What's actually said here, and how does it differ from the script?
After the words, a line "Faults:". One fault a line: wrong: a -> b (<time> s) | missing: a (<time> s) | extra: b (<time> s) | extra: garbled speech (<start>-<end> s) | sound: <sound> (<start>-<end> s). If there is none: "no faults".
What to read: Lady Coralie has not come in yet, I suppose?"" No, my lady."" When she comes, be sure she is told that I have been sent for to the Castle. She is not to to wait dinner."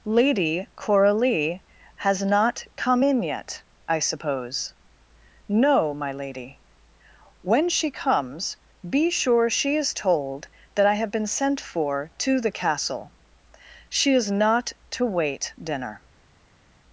Lady Coralie has not come in yet, I suppose?"" No, my lady."" When she comes, be sure she is told that I have been sent for to the Castle. She is not to wait dinner."
Faults:
missing: to (15.1 s)